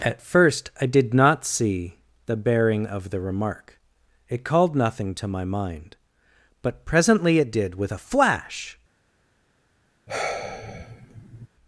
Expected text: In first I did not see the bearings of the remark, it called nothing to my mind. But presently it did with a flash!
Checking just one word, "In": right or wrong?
wrong